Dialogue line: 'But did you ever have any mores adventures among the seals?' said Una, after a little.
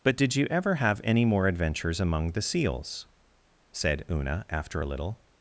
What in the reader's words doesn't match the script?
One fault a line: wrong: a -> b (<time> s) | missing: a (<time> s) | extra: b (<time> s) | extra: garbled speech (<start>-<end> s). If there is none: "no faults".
wrong: mores -> more (1.2 s)